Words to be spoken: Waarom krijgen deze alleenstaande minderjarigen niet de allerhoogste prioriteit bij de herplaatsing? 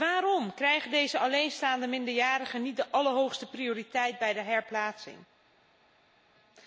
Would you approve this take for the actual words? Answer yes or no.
yes